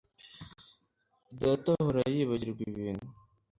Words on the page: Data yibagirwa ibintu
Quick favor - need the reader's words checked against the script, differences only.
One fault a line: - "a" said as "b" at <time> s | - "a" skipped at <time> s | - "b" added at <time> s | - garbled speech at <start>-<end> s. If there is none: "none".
- "ahora" added at 1.8 s